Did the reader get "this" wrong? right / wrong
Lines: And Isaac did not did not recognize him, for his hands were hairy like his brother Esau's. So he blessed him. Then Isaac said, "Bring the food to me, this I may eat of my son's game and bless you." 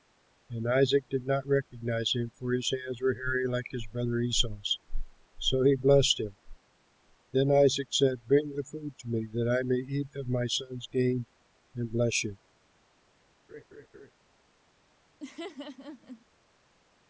wrong